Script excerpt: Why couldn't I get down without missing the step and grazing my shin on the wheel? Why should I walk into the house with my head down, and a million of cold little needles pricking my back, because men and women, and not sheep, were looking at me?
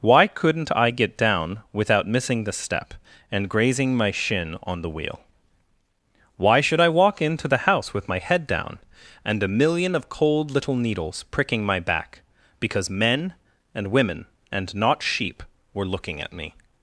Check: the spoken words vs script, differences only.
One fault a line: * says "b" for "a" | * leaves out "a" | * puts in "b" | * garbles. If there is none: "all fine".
all fine